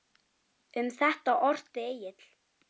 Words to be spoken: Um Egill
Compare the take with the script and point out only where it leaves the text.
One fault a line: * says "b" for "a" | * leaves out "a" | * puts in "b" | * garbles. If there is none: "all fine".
* puts in "þetta orti"